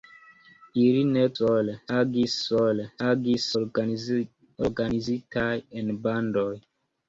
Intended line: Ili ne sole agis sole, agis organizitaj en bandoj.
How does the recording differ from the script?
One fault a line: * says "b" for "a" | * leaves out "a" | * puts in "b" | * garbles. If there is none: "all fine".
all fine